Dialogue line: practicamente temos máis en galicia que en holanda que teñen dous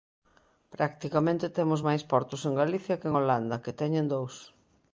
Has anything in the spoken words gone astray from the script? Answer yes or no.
yes